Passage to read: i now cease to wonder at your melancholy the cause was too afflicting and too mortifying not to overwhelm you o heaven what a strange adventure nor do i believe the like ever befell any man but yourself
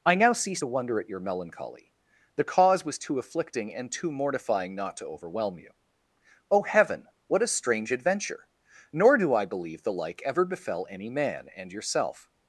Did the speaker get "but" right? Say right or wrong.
wrong